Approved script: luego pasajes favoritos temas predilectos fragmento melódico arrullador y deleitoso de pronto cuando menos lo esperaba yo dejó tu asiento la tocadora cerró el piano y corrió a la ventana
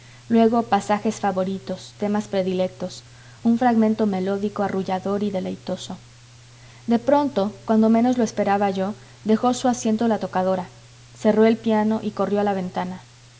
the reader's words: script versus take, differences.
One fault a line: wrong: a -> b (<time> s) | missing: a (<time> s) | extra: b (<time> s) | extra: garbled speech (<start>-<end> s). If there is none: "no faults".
extra: un (3.4 s)
wrong: tu -> su (9.5 s)